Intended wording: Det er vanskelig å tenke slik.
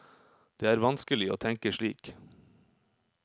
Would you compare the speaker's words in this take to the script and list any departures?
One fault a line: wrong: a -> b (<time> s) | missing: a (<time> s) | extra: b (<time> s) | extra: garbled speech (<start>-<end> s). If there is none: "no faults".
no faults